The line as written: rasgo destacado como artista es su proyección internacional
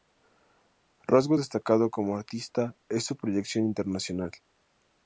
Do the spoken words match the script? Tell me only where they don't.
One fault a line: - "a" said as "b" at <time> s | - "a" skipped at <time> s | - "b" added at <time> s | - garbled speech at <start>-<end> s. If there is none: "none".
none